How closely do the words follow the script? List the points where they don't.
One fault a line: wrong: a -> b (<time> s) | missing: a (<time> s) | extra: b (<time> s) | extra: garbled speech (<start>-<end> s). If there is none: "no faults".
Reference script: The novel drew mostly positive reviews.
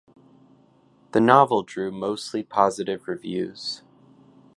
no faults